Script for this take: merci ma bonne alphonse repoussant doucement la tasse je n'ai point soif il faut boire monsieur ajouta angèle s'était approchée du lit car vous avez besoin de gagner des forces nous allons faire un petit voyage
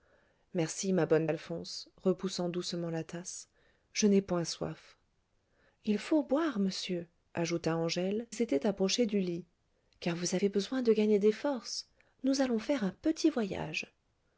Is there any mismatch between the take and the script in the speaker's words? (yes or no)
no